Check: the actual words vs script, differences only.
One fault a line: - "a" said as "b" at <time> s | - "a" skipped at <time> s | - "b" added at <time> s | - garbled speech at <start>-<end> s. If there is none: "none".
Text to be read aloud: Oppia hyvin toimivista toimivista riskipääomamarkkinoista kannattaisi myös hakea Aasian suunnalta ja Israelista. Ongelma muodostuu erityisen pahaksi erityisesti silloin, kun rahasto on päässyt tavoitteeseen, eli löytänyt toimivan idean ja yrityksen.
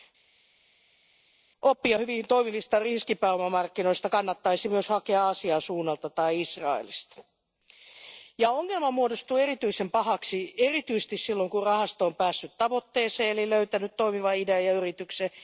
- "toimivista" skipped at 2.8 s
- "ja" said as "tai" at 6.1 s